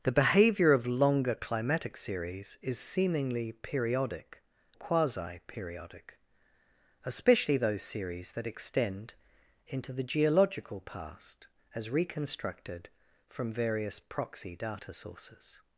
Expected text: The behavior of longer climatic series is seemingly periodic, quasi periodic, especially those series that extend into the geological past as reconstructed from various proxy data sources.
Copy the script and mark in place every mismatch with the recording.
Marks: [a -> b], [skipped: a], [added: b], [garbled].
The behavior of longer climatic series is seemingly periodic, quasi periodic, especially those series that extend into the geological past as reconstructed from various proxy data sources.